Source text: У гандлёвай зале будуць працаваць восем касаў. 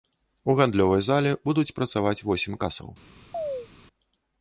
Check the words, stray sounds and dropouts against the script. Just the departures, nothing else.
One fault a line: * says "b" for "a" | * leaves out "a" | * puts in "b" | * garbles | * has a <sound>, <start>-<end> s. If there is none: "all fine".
* has a chirp, 3.3-3.7 s